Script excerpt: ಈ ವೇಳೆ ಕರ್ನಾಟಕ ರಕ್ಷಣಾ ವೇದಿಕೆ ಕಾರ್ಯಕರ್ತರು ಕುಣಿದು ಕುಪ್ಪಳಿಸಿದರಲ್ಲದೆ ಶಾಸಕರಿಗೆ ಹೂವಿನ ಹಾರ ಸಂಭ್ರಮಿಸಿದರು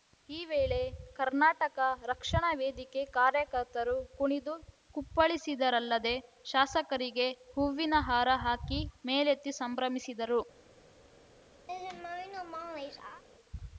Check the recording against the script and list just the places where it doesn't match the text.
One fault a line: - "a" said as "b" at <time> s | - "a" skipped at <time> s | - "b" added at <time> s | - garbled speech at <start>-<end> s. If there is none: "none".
- "ಹಾಕಿ ಮೇಲೆತ್ತಿ" added at 8.5 s